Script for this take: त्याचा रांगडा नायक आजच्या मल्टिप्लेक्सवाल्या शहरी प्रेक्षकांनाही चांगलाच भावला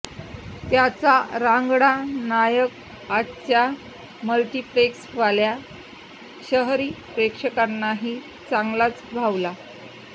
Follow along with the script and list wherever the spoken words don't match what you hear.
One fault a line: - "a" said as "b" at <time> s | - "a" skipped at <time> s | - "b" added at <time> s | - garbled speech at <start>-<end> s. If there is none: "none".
none